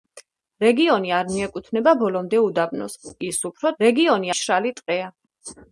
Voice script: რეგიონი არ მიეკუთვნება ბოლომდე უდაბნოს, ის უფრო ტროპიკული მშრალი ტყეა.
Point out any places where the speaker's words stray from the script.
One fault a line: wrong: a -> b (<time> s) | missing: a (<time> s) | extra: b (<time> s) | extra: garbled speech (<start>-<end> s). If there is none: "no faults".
wrong: ტროპიკული -> რეგიონი (3.8 s)